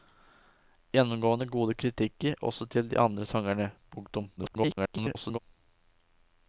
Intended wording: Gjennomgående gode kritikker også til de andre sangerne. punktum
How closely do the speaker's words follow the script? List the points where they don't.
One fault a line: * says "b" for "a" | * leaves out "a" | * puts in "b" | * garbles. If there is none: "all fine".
* garbles